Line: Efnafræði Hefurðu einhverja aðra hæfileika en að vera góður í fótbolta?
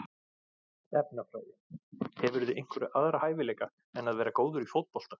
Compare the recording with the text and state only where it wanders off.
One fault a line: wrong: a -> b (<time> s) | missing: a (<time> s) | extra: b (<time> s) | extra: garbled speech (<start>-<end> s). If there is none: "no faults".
no faults